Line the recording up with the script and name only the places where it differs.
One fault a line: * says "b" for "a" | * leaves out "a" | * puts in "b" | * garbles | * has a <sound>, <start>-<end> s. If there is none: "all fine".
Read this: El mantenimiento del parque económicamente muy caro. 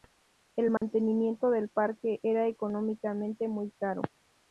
* has a dropout, 0.8-0.8 s
* puts in "era"